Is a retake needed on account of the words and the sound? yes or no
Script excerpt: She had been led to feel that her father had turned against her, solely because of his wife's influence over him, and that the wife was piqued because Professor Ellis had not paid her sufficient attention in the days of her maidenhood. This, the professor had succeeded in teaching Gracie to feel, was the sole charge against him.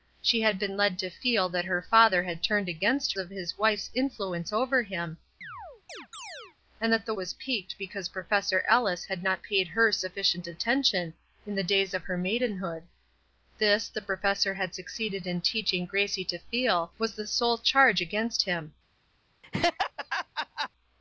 yes